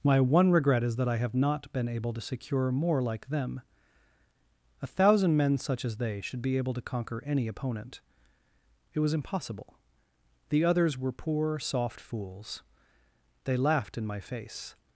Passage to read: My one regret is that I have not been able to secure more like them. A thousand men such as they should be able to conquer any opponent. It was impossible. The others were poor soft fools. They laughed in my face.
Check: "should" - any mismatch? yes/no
no